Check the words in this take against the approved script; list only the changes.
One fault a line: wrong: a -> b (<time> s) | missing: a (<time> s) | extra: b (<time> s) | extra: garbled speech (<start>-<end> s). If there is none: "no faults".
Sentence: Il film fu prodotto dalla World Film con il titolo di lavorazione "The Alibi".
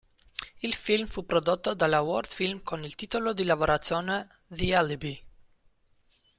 no faults